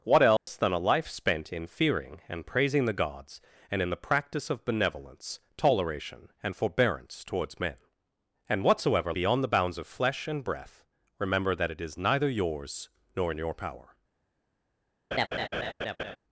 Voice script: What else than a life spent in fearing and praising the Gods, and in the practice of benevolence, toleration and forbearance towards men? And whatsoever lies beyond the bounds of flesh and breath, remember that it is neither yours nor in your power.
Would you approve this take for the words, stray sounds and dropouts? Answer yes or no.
no